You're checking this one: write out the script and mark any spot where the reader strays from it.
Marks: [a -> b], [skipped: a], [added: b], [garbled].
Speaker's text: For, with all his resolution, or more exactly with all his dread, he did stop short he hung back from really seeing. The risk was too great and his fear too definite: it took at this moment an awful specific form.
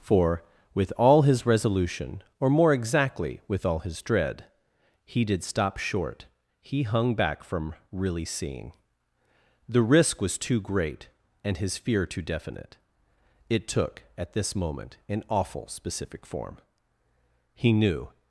For, with all his resolution, or more exactly with all his dread, he did stop short he hung back from really seeing. The risk was too great and his fear too definite: it took at this moment an awful specific form. [added: He knew]